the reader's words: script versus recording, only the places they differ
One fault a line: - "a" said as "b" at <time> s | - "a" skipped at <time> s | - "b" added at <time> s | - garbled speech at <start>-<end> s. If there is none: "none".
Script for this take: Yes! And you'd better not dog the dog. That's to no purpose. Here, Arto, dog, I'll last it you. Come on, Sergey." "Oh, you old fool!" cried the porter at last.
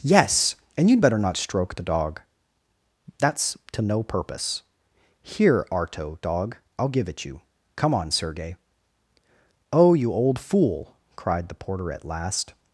- "dog" said as "stroke" at 1.4 s
- "last" said as "give" at 6.9 s